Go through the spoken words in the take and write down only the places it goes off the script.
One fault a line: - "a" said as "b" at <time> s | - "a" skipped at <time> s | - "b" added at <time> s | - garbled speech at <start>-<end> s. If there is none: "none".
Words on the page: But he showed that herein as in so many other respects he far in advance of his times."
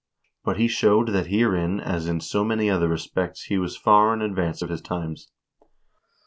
- "was" added at 3.6 s